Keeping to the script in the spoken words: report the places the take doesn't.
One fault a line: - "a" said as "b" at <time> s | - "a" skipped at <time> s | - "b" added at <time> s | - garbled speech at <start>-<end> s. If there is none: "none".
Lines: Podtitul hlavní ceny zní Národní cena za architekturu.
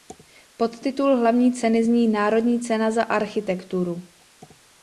none